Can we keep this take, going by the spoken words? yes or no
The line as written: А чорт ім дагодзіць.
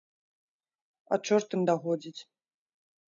yes